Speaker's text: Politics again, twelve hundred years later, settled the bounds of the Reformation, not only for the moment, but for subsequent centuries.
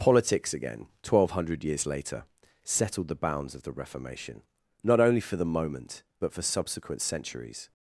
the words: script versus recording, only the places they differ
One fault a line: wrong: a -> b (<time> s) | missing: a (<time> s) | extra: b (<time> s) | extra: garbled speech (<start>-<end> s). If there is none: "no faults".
no faults